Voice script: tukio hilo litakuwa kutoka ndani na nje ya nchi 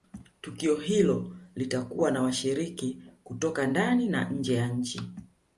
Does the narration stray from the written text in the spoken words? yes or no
yes